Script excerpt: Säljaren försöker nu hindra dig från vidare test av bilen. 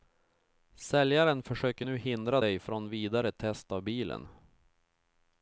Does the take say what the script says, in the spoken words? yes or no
yes